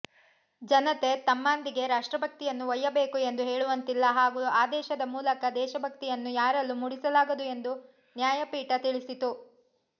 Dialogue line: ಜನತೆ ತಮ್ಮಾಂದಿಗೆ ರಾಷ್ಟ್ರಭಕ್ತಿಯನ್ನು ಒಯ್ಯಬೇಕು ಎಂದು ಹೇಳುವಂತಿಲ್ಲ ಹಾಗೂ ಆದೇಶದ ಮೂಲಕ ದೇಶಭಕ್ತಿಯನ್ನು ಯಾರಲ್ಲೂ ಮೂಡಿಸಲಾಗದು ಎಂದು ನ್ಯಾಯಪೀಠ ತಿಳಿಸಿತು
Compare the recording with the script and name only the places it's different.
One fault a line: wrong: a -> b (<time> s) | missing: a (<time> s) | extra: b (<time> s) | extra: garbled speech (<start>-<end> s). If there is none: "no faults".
no faults